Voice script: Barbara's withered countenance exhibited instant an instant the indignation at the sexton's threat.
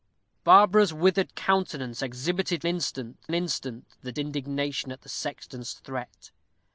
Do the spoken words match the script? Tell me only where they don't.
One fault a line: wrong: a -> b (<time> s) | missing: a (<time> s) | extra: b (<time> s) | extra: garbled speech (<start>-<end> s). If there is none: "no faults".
no faults